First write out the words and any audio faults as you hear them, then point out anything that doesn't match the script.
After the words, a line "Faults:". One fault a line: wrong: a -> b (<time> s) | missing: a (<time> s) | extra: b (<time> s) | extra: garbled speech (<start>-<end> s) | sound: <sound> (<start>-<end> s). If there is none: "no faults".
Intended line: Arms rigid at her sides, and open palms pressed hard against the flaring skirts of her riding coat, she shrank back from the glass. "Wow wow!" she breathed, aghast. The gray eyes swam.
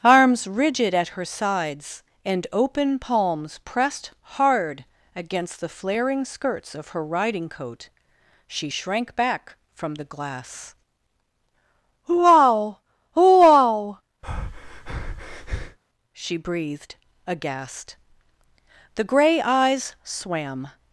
Arms rigid at her sides, and open palms pressed hard against the flaring skirts of her riding coat, she shrank back from the glass. "Wow wow!" she breathed, aghast. The gray eyes swam.
Faults:
sound: breath (14.2-15.8 s)